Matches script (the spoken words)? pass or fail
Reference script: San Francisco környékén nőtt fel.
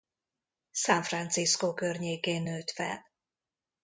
pass